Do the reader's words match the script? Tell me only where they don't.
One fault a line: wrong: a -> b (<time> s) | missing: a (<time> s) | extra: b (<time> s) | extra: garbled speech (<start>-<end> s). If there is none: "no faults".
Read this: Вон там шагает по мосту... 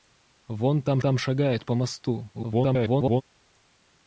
extra: там (1.0 s)
extra: garbled speech (2.3-3.2 s)